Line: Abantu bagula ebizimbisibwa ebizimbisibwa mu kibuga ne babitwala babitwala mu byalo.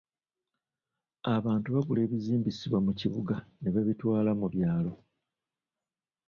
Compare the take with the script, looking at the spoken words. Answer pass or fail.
fail